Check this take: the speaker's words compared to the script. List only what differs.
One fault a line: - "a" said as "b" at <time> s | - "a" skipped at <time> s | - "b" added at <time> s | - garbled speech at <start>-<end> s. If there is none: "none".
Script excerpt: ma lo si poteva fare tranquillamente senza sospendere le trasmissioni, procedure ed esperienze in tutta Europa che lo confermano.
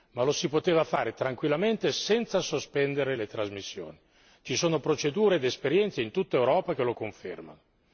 - "ci sono" added at 4.4 s